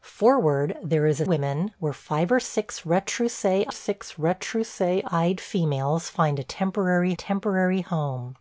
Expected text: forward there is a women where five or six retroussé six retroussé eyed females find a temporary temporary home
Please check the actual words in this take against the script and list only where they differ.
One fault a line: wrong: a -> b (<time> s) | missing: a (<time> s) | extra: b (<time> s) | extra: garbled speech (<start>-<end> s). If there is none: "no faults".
no faults